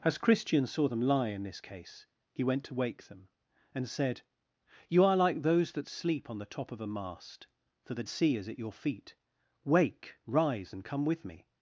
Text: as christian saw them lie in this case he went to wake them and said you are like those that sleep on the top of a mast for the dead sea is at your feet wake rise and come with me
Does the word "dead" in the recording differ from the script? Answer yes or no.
yes